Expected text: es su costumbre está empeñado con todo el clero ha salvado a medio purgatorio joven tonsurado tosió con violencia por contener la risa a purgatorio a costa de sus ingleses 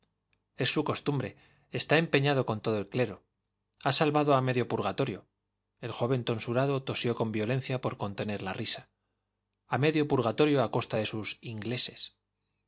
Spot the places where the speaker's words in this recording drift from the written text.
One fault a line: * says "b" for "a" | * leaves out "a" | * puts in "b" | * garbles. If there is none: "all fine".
* puts in "el"
* puts in "medio"